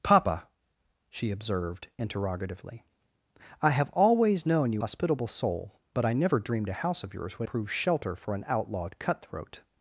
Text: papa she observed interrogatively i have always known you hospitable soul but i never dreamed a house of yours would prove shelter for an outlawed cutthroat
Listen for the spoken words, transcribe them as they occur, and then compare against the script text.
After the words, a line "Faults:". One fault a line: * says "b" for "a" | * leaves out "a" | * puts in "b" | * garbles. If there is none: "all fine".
papa she observed interrogatively i have always known you hospitable soul but i never dreamed a house of yours would prove shelter for an outlawed cutthroat
Faults:
all fine